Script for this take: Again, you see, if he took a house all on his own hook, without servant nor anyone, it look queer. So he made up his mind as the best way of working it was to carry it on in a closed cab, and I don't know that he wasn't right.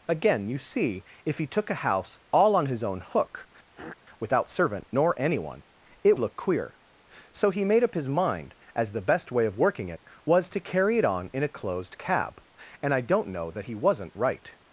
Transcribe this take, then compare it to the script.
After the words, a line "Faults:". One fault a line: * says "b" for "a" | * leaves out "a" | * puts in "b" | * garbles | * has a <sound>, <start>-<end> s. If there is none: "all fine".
Again, you see, if he took a house all on his own hook, without servant nor anyone, it look queer. So he made up his mind as the best way of working it was to carry it on in a closed cab, and I don't know that he wasn't right.
Faults:
* has a throat clearing, 3.8-4.0 s